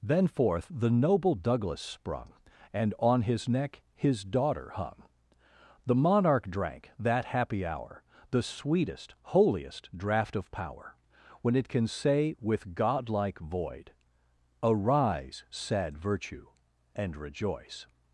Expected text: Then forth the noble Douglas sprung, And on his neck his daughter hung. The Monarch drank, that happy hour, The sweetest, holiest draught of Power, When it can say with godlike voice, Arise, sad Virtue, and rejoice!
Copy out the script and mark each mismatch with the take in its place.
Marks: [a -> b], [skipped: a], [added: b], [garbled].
Then forth the noble Douglas sprung, And on his neck his daughter hung. The Monarch drank, that happy hour, The sweetest, holiest draught of Power, When it can say with godlike [voice, -> void] Arise, sad Virtue, and rejoice!